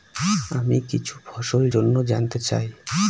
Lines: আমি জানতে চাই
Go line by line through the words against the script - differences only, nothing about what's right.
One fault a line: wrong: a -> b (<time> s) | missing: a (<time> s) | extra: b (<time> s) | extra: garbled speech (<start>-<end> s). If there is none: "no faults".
extra: কিছু ফসল জন্য (0.9 s)